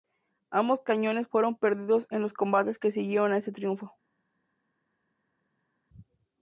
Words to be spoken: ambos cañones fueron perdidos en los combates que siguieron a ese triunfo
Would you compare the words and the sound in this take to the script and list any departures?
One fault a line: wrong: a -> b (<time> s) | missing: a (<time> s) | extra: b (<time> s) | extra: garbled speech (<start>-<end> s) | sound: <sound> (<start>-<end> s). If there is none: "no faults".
no faults